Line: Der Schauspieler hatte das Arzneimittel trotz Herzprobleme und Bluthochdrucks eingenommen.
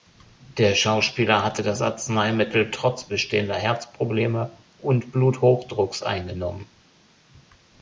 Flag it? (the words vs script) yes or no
yes